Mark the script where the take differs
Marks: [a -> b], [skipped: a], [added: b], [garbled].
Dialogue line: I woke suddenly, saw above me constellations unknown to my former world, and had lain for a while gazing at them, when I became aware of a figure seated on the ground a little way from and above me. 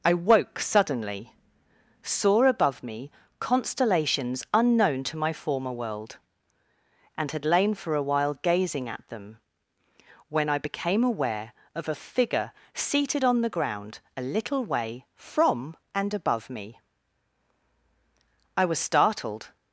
I woke suddenly, saw above me constellations unknown to my former world, and had lain for a while gazing at them, when I became aware of a figure seated on the ground a little way from and above me. [added: I was startled]